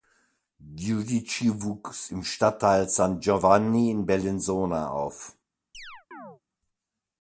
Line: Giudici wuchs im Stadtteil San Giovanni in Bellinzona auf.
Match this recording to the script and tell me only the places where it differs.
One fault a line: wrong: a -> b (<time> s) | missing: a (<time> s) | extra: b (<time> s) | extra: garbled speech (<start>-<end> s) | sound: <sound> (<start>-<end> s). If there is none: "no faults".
sound: chirp (5.7-6.4 s)